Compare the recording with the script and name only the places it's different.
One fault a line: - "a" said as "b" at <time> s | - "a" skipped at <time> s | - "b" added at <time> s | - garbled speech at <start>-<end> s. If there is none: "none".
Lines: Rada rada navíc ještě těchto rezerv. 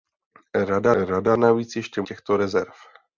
none